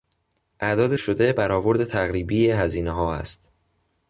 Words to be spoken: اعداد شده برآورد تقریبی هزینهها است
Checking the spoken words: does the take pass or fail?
pass